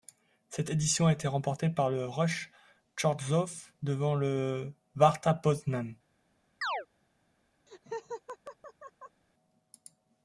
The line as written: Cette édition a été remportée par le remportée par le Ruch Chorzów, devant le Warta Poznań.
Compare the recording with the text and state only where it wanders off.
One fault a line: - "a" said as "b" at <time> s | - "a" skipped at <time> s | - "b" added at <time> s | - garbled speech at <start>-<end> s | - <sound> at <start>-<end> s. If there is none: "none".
- "remportée par le" skipped at 2.1 s
- chirp at 6.6-6.9 s
- laugh at 7.7-9.2 s